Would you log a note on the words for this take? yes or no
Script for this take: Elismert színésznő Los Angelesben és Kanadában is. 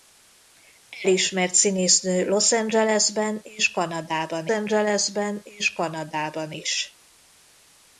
yes